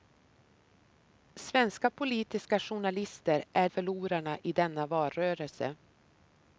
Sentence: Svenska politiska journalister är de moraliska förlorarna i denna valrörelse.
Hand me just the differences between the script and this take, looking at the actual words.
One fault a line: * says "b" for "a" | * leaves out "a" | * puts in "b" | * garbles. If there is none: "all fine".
* leaves out "de moraliska"